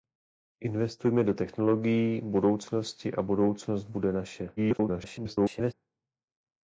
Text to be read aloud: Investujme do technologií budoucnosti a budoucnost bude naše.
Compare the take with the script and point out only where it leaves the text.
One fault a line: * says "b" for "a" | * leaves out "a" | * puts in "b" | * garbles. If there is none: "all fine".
* garbles